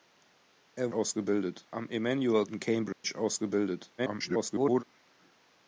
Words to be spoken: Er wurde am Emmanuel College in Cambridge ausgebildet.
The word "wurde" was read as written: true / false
false